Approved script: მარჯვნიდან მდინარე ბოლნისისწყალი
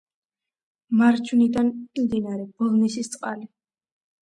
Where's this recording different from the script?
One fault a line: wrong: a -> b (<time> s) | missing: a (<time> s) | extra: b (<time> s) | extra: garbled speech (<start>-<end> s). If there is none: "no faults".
no faults